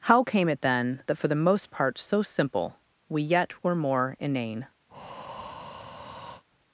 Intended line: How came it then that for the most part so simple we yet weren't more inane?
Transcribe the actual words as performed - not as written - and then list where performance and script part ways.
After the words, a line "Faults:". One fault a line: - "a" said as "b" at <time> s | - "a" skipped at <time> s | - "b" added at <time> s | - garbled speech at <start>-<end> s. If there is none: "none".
How came it then that for the most part so simple we yet were more inane?
Faults:
- "weren't" said as "were" at 3.6 s